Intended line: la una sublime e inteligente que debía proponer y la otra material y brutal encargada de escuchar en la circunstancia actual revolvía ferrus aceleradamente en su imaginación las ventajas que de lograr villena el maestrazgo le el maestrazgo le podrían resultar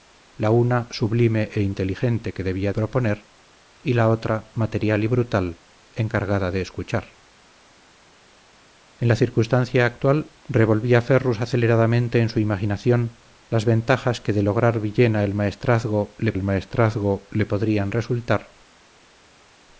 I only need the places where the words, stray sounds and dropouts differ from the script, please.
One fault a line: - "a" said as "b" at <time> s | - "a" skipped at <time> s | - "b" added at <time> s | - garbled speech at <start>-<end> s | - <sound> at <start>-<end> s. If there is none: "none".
none